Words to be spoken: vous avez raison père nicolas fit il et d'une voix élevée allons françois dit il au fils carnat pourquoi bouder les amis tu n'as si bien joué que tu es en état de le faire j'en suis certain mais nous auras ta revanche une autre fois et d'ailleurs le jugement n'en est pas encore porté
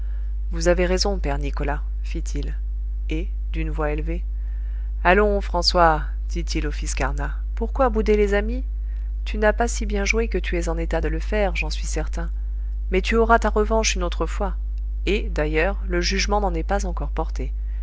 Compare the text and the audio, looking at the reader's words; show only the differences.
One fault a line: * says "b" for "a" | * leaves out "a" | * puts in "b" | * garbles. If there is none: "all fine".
* puts in "pas"
* says "tu" for "nous"